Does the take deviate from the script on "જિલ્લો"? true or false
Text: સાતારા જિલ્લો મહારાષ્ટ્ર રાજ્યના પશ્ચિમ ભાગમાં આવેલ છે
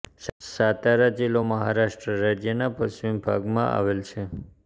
false